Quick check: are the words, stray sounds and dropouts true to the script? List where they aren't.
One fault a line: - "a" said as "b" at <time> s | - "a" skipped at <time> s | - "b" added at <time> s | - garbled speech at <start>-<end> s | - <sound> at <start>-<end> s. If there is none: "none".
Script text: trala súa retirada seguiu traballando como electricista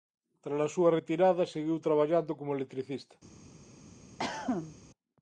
- cough at 4.2-4.8 s